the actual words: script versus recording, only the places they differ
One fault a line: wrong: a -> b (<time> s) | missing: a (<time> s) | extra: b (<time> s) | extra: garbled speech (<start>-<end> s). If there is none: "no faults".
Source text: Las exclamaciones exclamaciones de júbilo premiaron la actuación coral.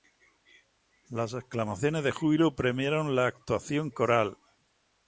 missing: exclamaciones (2.0 s)